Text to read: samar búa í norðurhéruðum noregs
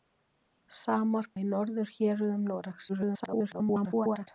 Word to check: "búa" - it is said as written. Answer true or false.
false